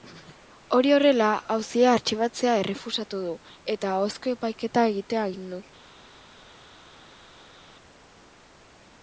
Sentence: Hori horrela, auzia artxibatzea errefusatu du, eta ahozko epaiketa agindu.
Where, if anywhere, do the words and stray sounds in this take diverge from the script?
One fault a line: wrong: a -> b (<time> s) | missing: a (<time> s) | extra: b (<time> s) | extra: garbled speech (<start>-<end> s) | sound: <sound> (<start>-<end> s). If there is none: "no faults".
extra: egitea (4.9 s)